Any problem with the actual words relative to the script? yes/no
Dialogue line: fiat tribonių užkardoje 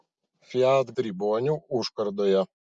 no